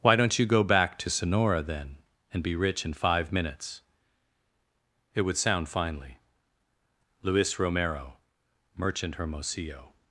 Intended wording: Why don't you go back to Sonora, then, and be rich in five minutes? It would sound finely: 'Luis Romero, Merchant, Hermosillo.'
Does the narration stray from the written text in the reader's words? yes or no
no